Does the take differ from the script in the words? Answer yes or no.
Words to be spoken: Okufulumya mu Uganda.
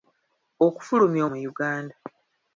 no